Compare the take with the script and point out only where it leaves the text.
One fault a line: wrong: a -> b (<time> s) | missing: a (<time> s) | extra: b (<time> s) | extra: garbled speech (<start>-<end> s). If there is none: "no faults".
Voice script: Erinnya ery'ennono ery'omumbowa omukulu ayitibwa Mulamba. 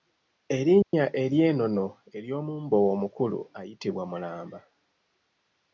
no faults